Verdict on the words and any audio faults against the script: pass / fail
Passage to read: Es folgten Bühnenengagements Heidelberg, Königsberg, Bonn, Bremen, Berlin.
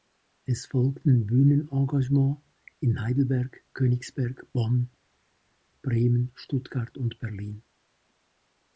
fail